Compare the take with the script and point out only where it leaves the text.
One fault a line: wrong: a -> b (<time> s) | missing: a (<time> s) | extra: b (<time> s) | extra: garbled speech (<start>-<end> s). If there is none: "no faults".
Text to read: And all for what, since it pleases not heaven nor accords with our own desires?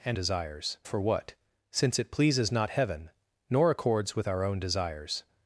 wrong: all -> desires (0.1 s)